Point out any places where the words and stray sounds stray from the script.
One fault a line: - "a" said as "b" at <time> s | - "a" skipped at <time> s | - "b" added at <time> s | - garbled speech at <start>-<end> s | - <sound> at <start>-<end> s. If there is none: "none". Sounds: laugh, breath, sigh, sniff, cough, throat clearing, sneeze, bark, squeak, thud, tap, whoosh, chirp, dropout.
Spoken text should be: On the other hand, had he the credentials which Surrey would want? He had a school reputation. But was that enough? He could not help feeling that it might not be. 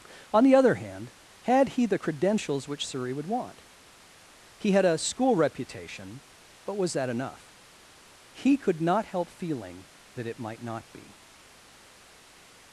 none